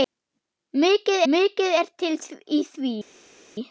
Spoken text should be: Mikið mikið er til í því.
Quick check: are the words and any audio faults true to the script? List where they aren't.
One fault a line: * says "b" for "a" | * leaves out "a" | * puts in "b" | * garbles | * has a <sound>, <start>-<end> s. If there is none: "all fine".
all fine